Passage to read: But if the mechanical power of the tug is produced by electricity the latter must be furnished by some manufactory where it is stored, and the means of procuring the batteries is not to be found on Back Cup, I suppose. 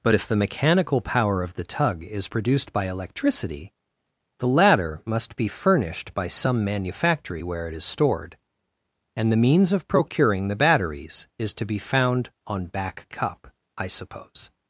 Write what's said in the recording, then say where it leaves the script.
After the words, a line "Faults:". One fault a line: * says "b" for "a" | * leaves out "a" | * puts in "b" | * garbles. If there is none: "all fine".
But if the mechanical power of the tug is produced by electricity the latter must be furnished by some manufactory where it is stored, and the means of procuring the batteries is to be found on Back Cup, I suppose.
Faults:
* leaves out "not"